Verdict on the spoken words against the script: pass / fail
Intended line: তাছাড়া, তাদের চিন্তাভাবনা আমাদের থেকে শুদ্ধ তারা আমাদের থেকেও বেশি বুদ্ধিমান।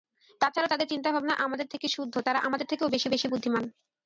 fail